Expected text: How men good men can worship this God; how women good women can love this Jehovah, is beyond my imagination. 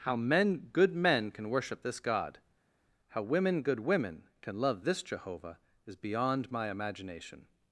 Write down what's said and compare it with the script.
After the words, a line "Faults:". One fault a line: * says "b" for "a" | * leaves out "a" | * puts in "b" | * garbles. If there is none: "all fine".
How men good men can worship this God; how women good women can love this Jehovah, is beyond my imagination.
Faults:
all fine